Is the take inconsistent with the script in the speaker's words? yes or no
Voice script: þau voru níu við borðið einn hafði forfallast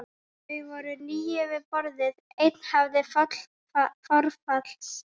no